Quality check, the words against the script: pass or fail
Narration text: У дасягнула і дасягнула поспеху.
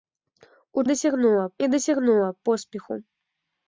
pass